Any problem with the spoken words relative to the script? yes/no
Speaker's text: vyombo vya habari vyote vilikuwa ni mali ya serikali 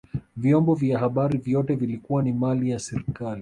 no